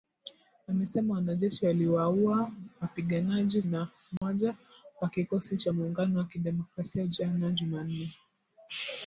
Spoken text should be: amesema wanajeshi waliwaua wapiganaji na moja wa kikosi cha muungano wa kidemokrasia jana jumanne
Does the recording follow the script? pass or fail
pass